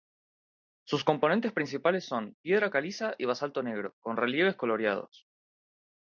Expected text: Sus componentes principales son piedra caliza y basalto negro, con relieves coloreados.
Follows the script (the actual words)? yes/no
yes